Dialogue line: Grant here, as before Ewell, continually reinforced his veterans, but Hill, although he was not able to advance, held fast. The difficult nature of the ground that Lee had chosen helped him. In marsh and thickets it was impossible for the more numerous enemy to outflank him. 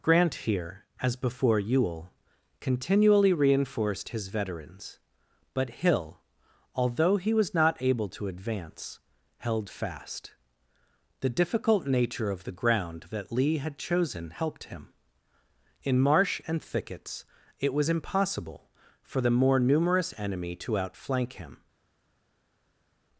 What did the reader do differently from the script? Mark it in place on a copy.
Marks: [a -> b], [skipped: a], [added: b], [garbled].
Grant here, as before Ewell, continually reinforced his veterans, but Hill, although he was not able to advance, held fast. The difficult nature of the ground that Lee had chosen helped him. In marsh and thickets it was impossible for the more numerous enemy to outflank him.